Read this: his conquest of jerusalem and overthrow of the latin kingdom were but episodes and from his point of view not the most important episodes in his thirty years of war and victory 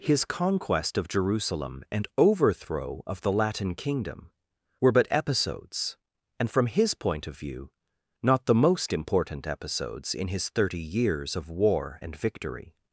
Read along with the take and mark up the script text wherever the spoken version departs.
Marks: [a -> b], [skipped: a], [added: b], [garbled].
his conquest of jerusalem and overthrow of the latin kingdom were but episodes and from his point of view not the most important episodes in his thirty years of war and victory